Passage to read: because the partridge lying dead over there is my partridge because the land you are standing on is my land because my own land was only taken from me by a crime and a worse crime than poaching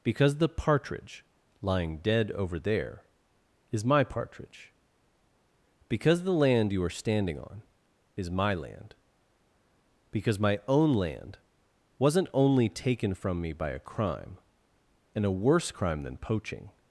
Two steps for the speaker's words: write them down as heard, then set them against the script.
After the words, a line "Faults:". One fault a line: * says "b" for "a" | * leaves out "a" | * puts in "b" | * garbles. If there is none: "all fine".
because the partridge lying dead over there is my partridge because the land you are standing on is my land because my own land wasn't only taken from me by a crime and a worse crime than poaching
Faults:
* says "wasn't" for "was"